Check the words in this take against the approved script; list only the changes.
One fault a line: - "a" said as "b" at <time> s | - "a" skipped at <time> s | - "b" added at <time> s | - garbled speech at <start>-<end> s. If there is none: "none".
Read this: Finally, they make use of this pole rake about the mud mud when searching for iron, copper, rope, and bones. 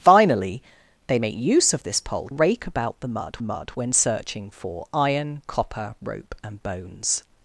none